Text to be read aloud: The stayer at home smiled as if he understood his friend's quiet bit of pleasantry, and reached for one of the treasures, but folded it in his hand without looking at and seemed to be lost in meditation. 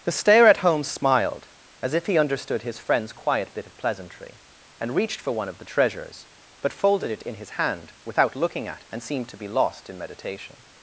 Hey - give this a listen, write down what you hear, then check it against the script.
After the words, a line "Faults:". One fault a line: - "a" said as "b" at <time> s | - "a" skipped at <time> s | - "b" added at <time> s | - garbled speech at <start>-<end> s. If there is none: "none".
The stayer at home smiled as if he understood his friend's quiet bit of pleasantry, and reached for one of the treasures, but folded it in his hand without looking at and seemed to be lost in meditation.
Faults:
none